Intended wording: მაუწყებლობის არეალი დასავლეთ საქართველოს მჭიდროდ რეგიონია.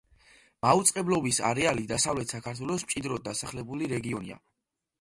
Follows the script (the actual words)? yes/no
no